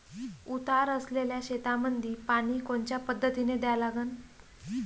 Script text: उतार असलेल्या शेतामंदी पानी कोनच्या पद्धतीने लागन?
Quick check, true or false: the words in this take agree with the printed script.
false